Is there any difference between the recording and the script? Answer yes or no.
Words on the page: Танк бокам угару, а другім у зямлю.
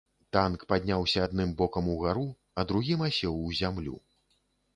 yes